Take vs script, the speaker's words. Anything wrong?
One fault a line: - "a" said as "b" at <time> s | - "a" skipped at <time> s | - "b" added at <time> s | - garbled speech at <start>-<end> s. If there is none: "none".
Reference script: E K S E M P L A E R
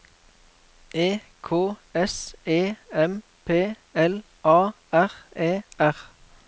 - "R" added at 4.9 s